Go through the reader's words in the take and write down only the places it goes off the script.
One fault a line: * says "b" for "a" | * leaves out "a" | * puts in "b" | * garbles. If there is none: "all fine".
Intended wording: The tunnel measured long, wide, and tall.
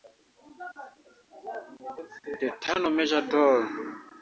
* leaves out "long wide and"